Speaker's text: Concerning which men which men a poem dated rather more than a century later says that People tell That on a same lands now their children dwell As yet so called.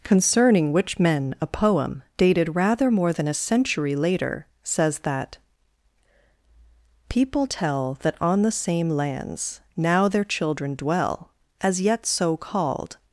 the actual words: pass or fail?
fail